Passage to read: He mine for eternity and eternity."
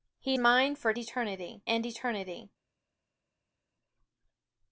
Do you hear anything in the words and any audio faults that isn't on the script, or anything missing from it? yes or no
no